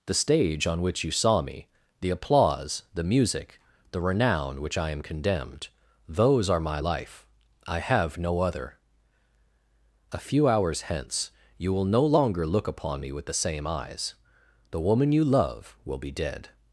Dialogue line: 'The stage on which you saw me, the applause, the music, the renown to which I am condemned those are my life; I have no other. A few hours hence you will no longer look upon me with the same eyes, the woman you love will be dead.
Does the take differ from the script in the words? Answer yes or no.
yes